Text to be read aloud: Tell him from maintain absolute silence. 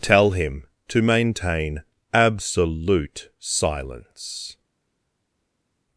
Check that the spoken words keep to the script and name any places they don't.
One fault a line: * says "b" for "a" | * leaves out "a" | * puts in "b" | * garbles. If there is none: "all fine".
* says "to" for "from"